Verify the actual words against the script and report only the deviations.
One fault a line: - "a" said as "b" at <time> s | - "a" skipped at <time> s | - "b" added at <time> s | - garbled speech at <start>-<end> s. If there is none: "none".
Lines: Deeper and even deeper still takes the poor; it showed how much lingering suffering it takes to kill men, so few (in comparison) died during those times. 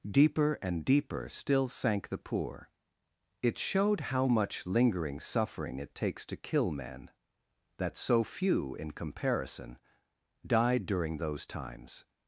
- "even" skipped at 0.8 s
- "takes" said as "sank" at 1.7 s
- "that" added at 7.8 s